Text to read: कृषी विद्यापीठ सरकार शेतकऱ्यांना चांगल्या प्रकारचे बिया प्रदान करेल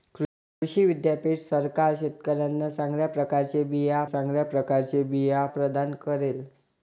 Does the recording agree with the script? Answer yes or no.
no